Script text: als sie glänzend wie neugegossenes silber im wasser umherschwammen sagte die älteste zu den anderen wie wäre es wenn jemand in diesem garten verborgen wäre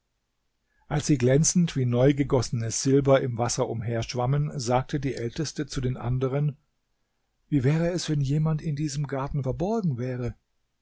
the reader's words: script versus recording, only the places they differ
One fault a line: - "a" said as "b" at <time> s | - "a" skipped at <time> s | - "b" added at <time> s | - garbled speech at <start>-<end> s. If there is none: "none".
none